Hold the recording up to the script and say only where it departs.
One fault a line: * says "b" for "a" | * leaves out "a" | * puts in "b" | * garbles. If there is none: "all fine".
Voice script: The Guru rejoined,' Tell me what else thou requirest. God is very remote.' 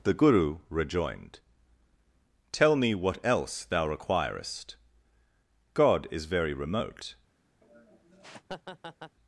all fine